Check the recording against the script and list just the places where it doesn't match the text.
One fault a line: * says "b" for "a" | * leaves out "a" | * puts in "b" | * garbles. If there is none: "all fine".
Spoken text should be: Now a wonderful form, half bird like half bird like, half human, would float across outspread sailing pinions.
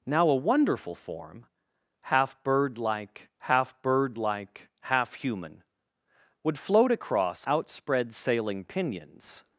all fine